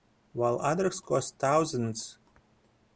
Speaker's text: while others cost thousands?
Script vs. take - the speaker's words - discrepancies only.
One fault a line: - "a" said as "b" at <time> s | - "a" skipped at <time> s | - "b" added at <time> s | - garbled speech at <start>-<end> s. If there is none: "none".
none